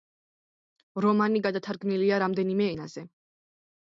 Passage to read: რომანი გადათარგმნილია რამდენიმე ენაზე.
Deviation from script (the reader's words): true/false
false